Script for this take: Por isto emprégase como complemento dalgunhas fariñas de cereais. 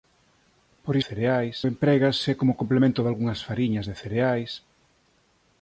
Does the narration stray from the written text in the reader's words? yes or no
yes